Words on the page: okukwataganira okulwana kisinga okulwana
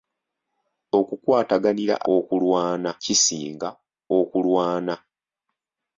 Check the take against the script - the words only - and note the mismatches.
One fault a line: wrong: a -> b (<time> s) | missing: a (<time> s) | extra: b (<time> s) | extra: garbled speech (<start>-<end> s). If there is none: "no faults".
no faults